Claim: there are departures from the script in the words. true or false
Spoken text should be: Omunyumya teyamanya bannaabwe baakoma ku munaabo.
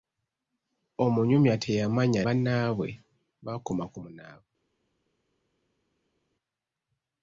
false